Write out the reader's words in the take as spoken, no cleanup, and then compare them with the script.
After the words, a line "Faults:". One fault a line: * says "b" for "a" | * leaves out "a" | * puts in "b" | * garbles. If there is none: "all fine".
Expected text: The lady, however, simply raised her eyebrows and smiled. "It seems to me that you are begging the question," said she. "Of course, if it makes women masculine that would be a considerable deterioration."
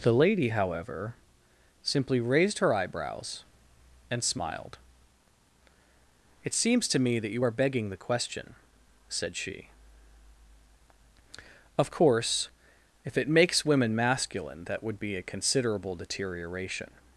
The lady, however, simply raised her eyebrows and smiled. "It seems to me that you are begging the question," said she. "Of course, if it makes women masculine that would be a considerable deterioration."
Faults:
all fine